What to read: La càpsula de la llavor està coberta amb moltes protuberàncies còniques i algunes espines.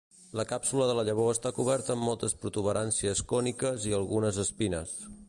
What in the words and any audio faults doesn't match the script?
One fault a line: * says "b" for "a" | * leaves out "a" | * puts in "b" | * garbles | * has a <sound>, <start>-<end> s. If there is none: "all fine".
all fine